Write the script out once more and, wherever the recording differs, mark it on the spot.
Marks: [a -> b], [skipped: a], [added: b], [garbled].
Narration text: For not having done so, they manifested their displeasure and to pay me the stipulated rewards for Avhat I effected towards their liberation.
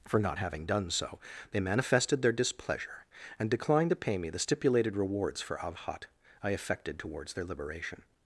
For not having done so, they manifested their displeasure and [added: declined] to pay me the stipulated rewards for Avhat I effected towards their liberation.